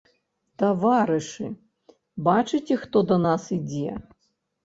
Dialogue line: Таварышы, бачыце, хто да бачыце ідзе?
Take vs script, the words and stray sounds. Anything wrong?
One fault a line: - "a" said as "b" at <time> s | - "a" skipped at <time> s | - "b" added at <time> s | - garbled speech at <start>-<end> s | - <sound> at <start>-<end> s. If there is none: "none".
- "бачыце" said as "нас" at 3.3 s